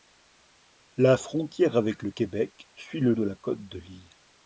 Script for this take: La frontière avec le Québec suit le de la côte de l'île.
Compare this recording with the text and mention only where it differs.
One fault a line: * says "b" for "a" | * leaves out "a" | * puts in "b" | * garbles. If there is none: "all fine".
all fine